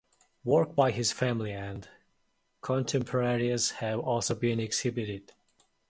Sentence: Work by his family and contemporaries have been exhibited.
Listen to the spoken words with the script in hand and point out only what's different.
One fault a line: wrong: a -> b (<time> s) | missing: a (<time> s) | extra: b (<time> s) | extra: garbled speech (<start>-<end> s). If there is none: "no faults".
extra: also (4.0 s)